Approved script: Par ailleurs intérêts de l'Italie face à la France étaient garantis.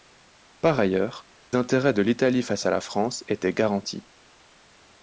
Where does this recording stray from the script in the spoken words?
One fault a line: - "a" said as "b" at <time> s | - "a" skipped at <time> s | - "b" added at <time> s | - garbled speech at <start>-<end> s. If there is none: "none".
none